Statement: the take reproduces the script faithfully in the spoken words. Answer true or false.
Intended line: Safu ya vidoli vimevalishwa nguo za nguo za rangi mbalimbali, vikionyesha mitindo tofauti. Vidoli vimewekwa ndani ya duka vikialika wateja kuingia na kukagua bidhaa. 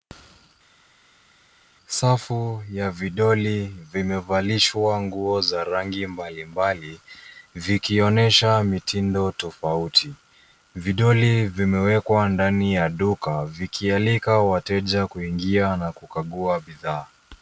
false